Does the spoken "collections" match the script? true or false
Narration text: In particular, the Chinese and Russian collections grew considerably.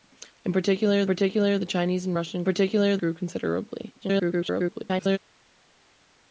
false